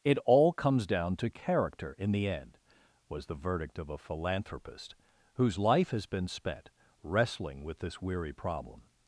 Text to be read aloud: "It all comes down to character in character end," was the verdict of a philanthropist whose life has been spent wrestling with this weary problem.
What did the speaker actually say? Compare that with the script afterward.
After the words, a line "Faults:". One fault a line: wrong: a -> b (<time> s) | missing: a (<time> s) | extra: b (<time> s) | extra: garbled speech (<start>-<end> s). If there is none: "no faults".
"It all comes down to character in the end," was the verdict of a philanthropist whose life has been spent wrestling with this weary problem.
Faults:
wrong: character -> the (2.1 s)